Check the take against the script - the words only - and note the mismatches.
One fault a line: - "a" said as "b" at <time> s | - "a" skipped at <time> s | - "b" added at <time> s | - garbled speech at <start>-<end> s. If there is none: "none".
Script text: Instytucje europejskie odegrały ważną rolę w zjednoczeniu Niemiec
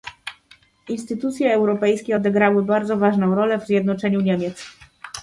- "bardzo" added at 2.6 s